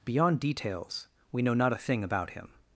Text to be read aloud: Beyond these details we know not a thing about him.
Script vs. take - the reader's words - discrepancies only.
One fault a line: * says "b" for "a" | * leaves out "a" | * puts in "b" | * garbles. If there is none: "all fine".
* leaves out "these"